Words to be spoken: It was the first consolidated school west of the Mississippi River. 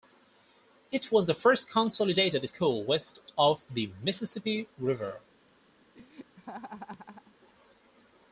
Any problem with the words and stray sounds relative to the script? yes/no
yes